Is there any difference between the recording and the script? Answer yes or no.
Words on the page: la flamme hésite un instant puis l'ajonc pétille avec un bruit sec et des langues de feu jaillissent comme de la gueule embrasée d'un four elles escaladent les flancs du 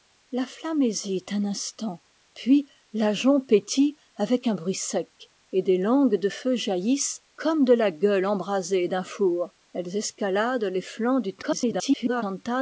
yes